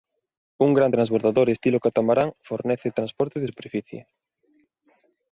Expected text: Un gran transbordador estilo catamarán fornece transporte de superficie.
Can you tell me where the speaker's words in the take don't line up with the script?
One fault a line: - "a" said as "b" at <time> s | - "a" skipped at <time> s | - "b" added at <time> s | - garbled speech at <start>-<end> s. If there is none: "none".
none